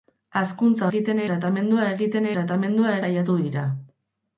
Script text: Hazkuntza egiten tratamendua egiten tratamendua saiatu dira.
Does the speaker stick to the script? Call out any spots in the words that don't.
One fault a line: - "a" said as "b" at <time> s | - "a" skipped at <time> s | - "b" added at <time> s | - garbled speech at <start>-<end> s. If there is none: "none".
none